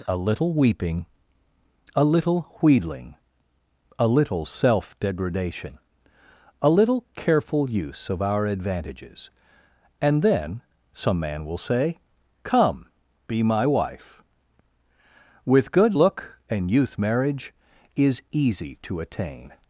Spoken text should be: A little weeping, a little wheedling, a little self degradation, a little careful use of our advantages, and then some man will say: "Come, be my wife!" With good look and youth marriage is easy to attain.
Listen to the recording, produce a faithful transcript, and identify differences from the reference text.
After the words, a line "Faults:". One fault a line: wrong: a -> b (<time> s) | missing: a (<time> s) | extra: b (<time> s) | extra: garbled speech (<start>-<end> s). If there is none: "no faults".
A little weeping, a little wheedling, a little self degradation, a little careful use of our advantages, and then some man will say: "Come, be my wife!" With good look and youth marriage is easy to attain.
Faults:
no faults